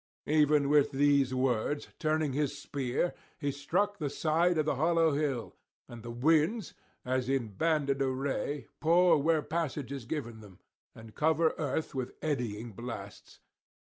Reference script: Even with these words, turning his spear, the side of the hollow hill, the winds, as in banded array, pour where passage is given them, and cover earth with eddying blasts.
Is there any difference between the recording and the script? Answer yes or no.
yes